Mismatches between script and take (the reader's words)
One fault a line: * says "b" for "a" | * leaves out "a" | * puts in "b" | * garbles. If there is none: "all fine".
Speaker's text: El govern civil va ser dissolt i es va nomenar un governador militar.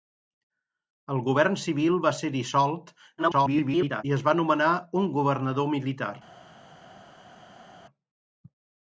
* garbles